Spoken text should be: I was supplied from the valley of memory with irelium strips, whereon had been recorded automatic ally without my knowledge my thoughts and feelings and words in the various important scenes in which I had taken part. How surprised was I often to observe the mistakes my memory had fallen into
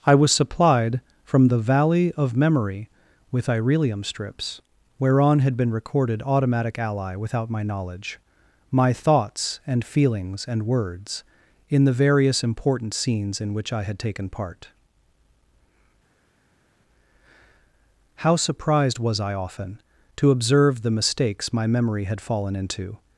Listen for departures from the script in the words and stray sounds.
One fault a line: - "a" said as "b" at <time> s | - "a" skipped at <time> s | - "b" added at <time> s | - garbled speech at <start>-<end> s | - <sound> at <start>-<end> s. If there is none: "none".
none